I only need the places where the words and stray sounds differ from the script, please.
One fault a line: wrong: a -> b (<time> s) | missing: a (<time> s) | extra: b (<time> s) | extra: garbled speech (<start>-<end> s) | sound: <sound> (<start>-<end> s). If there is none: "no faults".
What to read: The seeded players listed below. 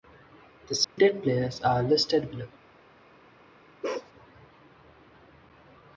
sound: dropout (0.8-1.0 s)
extra: are (1.6 s)
sound: bark (3.8-4.1 s)